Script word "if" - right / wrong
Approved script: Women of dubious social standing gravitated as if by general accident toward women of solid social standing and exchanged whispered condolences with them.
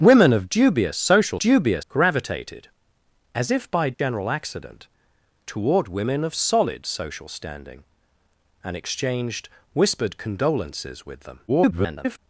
right